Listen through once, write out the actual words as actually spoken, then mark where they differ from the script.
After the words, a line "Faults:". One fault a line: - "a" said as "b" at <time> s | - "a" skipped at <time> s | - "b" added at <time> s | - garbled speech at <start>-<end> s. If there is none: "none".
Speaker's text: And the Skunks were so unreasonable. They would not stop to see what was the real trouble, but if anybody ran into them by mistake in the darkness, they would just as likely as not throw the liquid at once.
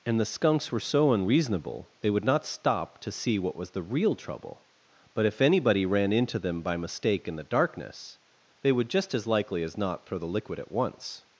And the Skunks were so unreasonable. They would not stop to see what was the real trouble, but if anybody ran into them by mistake in the darkness, they would just as likely as not throw the liquid at once.
Faults:
none